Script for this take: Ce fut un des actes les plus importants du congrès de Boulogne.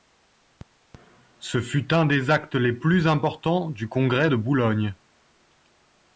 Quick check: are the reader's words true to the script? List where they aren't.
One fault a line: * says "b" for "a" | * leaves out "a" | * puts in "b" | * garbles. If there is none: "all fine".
all fine